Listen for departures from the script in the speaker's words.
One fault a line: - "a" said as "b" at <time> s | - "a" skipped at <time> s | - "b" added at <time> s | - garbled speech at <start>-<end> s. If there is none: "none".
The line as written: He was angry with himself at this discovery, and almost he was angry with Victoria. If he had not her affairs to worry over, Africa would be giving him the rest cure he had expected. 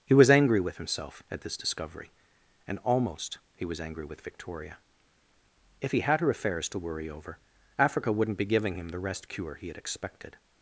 - "not" skipped at 6.2 s
- "would" said as "wouldn't" at 8.1 s